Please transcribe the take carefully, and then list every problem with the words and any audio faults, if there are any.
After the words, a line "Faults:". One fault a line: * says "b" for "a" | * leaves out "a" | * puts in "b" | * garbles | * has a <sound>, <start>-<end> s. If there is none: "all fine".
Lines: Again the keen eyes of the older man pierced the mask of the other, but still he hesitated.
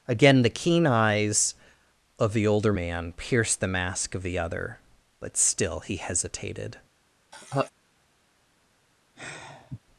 Again the keen eyes of the older man pierced the mask of the other, but still he hesitated.
Faults:
* has a laugh, 7.3-7.7 s
* has a sigh, 9.2-9.8 s